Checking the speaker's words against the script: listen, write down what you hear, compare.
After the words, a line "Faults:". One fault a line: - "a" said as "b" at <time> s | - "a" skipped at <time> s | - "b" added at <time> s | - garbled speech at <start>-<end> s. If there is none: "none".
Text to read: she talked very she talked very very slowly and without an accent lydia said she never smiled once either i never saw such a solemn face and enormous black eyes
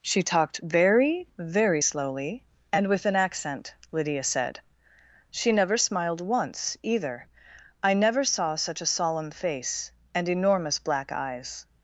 she talked very very slowly and with an accent lydia said she never smiled once either i never saw such a solemn face and enormous black eyes
Faults:
- "she talked" skipped at 1.3 s
- "very" skipped at 1.8 s
- "without" said as "with" at 2.9 s